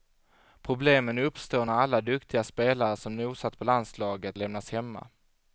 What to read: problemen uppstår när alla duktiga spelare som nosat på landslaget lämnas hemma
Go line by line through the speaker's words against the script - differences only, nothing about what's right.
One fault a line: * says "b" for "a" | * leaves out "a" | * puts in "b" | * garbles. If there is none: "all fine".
all fine